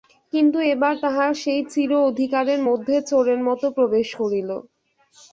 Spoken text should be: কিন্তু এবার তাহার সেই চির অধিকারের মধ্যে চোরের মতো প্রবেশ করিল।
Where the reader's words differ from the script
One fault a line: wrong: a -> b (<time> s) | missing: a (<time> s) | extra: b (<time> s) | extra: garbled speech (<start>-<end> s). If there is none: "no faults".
no faults